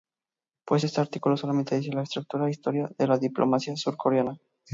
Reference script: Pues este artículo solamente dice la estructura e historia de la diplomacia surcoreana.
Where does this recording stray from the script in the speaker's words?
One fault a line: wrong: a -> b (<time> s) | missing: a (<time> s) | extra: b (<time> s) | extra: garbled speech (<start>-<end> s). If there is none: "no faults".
no faults